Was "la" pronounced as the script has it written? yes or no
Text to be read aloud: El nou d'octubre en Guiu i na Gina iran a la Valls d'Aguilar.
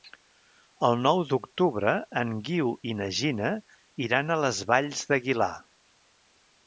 no